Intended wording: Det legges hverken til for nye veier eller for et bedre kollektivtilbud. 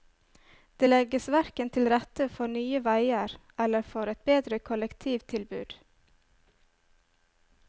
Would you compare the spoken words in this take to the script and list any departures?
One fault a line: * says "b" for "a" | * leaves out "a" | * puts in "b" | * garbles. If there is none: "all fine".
* puts in "rette"